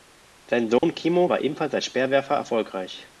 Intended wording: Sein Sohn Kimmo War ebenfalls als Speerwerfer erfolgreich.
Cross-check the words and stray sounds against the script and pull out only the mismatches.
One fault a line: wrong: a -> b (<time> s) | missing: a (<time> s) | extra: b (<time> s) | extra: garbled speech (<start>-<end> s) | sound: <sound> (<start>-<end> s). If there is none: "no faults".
sound: dropout (0.8-0.8 s)